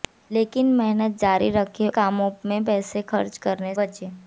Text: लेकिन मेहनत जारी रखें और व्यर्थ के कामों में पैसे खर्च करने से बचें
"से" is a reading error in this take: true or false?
true